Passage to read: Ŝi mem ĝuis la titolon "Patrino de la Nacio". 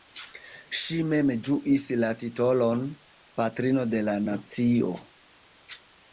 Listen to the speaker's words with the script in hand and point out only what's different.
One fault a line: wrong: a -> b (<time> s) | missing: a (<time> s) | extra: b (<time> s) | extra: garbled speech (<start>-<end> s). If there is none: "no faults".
no faults